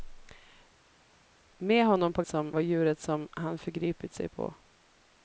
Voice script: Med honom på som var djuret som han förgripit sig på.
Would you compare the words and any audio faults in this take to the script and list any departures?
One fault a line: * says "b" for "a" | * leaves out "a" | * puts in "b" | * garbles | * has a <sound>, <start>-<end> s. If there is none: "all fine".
all fine